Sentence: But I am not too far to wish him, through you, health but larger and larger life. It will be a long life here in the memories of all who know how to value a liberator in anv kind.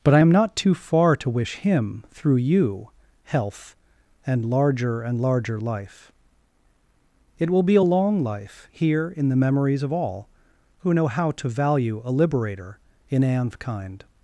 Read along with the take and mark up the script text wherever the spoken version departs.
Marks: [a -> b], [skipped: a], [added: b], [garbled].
But I am not too far to wish him, through you, health [but -> and] larger and larger life. It will be a long life here in the memories of all who know how to value a liberator in anv kind.